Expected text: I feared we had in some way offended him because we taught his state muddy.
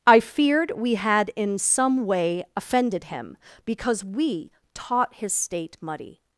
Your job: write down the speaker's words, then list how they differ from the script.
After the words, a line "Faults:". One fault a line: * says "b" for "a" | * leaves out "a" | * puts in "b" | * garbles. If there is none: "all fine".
I feared we had in some way offended him because we taught his state muddy.
Faults:
all fine